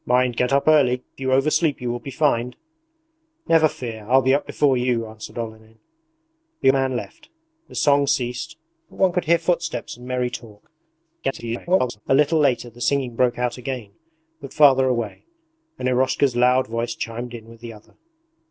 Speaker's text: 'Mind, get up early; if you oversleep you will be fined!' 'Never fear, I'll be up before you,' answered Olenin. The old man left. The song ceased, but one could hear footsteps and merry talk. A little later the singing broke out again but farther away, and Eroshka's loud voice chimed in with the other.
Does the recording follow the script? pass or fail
fail